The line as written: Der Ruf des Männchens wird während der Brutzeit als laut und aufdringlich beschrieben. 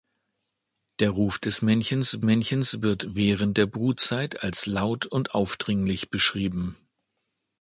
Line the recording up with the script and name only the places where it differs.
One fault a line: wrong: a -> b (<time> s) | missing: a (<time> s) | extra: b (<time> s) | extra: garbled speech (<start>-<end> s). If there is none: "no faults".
extra: Männchens (2.2 s)